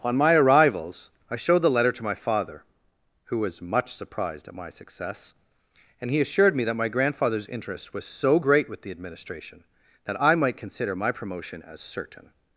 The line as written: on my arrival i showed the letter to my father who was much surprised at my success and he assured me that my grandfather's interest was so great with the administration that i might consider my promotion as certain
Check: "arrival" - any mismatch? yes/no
yes